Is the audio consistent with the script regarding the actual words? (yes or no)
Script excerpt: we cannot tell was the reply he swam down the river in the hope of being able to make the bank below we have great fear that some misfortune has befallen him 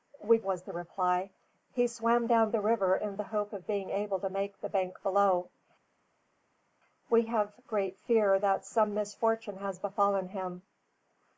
no